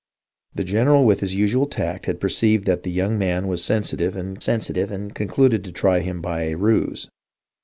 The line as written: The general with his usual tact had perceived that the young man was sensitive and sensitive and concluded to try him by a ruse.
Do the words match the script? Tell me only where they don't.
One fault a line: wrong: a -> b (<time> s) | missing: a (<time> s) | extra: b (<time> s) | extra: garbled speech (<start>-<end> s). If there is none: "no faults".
no faults